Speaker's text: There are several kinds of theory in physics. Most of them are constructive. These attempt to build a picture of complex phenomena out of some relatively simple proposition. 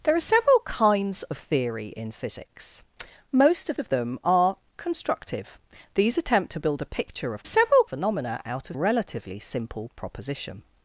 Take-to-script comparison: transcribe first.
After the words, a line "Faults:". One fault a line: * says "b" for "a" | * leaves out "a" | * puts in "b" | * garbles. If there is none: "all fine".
There are several kinds of theory in physics. Most of of them are constructive. These attempt to build a picture of several phenomena out of relatively simple proposition.
Faults:
* puts in "of"
* says "several" for "complex"
* leaves out "some"